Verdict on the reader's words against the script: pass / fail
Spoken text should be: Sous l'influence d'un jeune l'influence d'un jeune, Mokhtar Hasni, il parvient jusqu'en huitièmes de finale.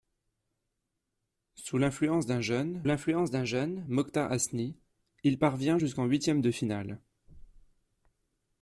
pass